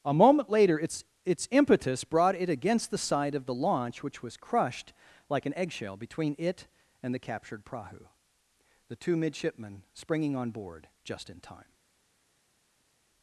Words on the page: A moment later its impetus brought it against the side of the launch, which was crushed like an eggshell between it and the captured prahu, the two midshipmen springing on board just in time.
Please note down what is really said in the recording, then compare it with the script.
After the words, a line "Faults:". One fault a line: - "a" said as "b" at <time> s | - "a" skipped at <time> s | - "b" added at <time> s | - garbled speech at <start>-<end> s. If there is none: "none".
A moment later its its impetus brought it against the side of the launch, which was crushed like an eggshell between it and the captured prahu, the two midshipmen springing on board just in time.
Faults:
- "its" added at 1.2 s